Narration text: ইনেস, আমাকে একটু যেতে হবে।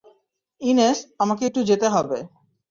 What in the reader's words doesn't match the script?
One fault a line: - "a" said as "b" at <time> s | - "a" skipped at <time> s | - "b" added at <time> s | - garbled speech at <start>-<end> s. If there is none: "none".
none